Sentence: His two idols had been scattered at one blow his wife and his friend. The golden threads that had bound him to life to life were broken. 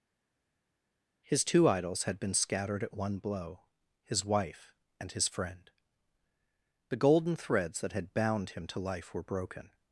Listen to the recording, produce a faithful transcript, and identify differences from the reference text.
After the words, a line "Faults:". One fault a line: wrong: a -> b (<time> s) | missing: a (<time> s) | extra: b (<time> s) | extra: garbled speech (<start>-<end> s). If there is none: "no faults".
His two idols had been scattered at one blow his wife and his friend. The golden threads that had bound him to life were broken.
Faults:
missing: to life (9.1 s)